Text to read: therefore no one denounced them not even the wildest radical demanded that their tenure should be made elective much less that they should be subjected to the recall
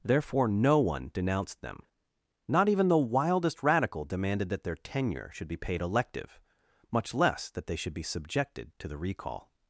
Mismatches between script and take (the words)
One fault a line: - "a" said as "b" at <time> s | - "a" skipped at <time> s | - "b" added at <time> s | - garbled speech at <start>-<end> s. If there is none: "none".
- "made" said as "paid" at 5.6 s